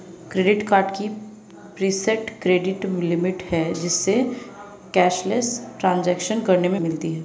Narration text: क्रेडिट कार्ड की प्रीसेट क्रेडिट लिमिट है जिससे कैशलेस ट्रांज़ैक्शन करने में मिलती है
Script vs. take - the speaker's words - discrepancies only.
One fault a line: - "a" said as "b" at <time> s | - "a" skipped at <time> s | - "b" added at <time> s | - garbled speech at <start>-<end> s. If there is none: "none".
none